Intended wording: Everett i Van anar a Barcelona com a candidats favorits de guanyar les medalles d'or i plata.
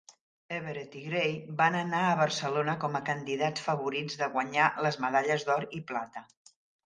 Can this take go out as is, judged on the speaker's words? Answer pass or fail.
fail